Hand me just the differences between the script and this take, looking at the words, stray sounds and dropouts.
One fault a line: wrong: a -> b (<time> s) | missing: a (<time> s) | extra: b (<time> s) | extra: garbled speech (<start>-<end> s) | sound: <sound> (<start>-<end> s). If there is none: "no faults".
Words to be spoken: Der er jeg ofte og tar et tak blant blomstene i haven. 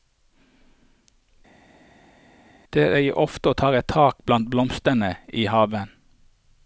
no faults